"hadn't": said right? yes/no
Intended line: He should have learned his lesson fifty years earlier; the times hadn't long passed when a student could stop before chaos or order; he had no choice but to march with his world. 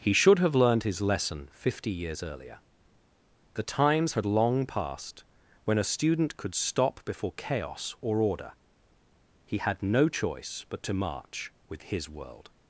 no